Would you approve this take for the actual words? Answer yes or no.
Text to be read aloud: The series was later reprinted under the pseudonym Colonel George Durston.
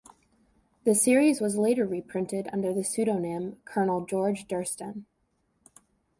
yes